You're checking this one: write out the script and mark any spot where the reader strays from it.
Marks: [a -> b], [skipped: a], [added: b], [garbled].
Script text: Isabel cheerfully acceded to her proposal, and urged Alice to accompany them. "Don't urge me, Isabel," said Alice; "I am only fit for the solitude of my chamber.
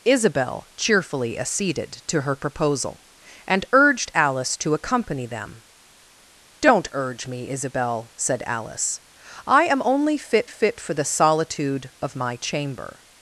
Isabel cheerfully acceded to her proposal, and urged Alice to accompany them. "Don't urge me, Isabel," said Alice; "I am only fit [added: fit] for the solitude of my chamber.